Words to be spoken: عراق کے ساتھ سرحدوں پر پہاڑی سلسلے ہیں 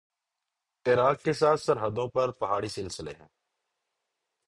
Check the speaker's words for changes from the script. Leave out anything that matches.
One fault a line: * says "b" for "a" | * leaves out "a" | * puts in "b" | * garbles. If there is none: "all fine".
all fine